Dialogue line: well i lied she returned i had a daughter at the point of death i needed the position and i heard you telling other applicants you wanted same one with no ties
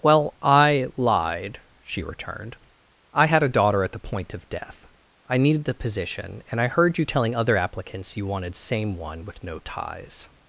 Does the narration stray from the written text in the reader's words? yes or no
no